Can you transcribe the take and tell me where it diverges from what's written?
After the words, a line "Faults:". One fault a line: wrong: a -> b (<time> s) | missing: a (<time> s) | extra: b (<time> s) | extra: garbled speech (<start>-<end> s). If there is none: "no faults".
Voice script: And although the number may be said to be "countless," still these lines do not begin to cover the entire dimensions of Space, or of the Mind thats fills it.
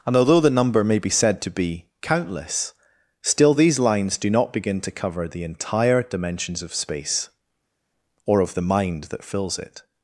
And although the number may be said to be "countless," still these lines do not begin to cover the entire dimensions of Space, or of the Mind that fills it.
Faults:
wrong: thats -> that (9.0 s)